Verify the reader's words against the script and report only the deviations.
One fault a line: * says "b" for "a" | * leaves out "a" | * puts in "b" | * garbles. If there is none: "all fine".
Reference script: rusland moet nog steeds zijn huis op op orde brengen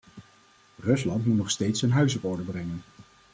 * leaves out "op"